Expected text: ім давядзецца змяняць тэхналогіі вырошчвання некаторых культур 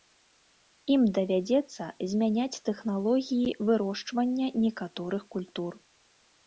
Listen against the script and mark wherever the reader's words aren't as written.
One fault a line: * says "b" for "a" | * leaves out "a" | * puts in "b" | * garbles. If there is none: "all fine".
all fine